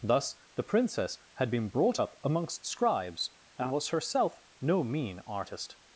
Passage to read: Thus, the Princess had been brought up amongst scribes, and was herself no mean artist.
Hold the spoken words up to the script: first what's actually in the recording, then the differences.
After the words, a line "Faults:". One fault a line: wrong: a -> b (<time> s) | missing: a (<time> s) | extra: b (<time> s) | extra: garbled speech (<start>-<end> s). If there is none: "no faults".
Thus, the Princess had been brought up amongst scribes, and was herself no mean artist.
Faults:
no faults